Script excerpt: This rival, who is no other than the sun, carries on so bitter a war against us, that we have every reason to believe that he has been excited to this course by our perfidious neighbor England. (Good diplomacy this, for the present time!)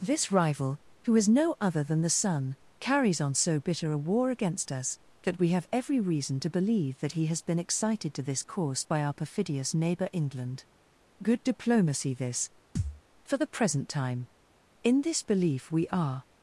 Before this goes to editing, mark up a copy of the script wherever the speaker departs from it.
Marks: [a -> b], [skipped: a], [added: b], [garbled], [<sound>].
This rival, who is no other than the sun, carries on so bitter a war against us, that we have every reason to believe that he has been excited to this course by our perfidious neighbor England. (Good diplomacy this, [thud] for the present time!) [added: In this belief we are]